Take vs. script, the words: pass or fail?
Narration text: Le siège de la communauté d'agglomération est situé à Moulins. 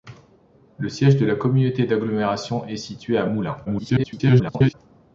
fail